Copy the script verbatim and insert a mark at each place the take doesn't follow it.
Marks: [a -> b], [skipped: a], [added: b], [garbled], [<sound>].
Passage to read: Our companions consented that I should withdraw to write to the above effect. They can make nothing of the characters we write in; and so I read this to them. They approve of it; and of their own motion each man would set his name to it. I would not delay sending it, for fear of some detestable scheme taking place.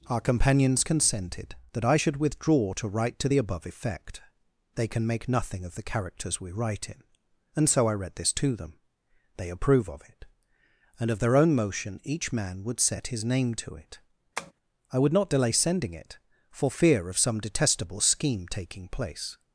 Our companions consented that I should withdraw to write to the above effect. They can make nothing of the characters we write in; and so I read this to them. They approve of it; and of their own motion each man would set his name to it. [tap] I would not delay sending it, for fear of some detestable scheme taking place.